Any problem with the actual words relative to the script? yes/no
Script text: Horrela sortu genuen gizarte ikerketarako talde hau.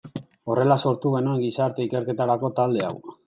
no